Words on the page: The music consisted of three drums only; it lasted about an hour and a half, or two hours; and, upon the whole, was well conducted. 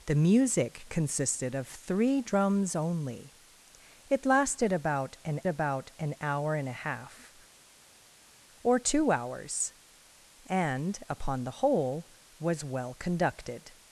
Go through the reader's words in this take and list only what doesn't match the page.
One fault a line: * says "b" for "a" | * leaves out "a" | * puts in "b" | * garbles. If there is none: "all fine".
* puts in "about an"